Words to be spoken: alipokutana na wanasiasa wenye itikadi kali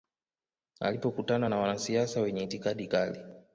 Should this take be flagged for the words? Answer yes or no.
no